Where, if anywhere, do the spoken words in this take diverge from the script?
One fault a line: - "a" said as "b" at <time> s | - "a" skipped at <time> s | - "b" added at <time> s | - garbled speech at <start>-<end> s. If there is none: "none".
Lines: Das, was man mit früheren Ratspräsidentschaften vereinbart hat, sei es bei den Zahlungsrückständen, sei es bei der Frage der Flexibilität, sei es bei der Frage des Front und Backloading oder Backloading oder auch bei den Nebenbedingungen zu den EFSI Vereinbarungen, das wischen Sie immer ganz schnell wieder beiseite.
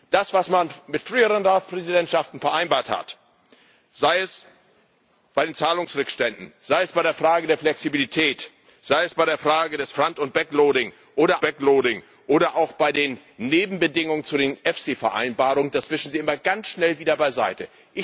none